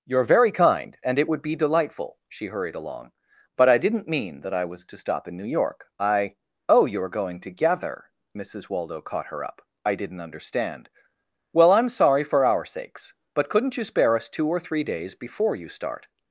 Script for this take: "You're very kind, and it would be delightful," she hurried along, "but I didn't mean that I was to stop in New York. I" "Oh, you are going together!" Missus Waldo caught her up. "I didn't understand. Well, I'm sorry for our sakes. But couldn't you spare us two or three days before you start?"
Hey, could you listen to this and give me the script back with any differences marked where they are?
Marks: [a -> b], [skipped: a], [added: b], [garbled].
"You're very kind, and it would be delightful," she hurried along, "but I didn't mean that I was to stop in New York. I" "Oh, you are going together!" Missus Waldo caught her up. "I didn't understand. Well, I'm sorry for our sakes. But couldn't you spare us two or three days before you start?"